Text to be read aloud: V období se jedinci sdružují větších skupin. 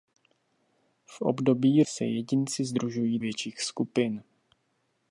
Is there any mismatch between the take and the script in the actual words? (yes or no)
no